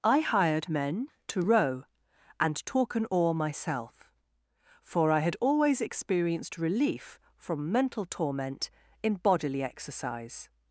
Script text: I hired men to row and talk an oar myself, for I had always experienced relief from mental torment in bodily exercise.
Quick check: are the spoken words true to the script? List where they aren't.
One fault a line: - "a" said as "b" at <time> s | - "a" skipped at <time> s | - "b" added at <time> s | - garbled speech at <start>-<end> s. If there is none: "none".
none